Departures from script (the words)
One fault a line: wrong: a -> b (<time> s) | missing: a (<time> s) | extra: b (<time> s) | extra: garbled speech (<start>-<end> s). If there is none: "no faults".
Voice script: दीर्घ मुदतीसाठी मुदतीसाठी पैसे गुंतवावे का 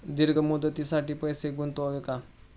missing: मुदतीसाठी (1.1 s)